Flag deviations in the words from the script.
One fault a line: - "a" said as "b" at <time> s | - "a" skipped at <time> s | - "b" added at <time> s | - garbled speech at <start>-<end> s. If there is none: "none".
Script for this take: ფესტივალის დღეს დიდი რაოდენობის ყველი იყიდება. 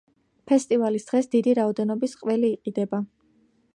none